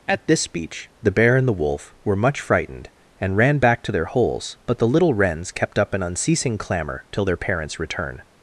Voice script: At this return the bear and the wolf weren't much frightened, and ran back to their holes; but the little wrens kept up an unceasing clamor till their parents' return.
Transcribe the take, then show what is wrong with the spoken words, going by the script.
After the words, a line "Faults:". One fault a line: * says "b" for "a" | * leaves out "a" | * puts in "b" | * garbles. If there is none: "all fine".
At this speech the bear and the wolf were much frightened, and ran back to their holes; but the little wrens kept up an unceasing clamor till their parents' return.
Faults:
* says "speech" for "return"
* says "were" for "weren't"